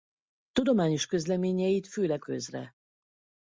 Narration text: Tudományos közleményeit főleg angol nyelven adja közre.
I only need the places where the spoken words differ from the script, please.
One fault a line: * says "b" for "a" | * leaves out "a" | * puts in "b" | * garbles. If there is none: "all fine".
* leaves out "angol nyelven adja"